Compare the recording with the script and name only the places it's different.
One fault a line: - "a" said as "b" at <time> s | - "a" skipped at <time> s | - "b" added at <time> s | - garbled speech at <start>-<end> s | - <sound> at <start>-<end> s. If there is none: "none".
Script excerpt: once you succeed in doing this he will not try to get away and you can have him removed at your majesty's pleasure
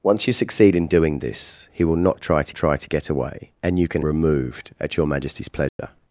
- "try to" added at 2.5 s
- "have him" skipped at 4.0 s
- dropout at 5.7-5.8 s